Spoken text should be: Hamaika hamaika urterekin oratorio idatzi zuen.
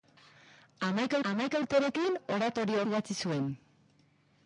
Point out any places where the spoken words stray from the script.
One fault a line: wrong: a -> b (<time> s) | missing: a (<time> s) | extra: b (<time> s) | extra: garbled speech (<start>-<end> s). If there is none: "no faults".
no faults